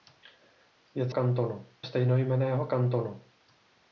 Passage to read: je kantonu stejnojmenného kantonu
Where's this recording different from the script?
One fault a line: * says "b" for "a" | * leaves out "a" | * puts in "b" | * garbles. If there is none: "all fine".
all fine